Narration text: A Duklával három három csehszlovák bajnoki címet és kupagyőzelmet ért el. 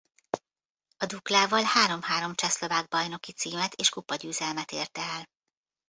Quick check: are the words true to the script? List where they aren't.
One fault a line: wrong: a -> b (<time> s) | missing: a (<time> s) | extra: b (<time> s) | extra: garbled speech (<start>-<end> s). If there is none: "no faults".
no faults